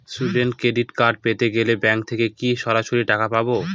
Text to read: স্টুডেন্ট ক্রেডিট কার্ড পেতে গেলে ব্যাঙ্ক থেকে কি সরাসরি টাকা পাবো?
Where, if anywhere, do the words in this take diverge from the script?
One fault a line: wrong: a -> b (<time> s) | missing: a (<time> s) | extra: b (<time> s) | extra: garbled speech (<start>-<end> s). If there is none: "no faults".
no faults